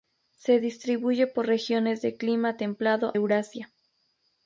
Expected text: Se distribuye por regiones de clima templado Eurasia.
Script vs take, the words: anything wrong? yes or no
no